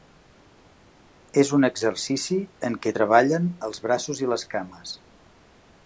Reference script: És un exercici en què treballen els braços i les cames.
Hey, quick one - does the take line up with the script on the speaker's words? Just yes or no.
yes